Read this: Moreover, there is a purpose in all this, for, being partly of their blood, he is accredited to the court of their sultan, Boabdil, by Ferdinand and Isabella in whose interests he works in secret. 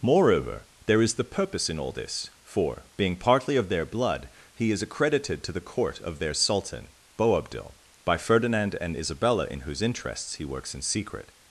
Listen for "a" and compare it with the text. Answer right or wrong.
wrong